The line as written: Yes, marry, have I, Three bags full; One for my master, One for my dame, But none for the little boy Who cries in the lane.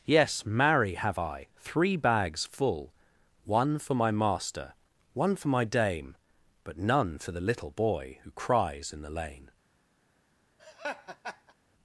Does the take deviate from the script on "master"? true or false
false